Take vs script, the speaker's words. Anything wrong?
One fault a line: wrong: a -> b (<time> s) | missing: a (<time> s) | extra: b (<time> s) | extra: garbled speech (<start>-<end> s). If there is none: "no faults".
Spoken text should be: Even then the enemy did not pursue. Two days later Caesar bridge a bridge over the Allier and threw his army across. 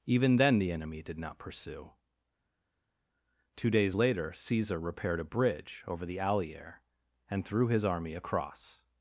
wrong: bridge -> repaired (4.8 s)